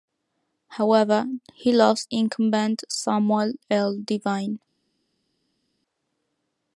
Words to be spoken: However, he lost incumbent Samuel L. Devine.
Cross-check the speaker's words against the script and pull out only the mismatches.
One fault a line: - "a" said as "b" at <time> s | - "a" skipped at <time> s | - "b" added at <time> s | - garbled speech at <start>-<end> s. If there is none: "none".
none